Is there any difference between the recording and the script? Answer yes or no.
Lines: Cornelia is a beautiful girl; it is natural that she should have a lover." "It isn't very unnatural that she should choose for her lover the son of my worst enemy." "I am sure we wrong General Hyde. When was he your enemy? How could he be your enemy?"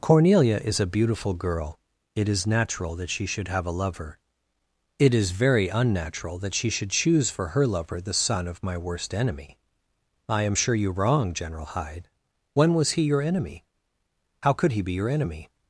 yes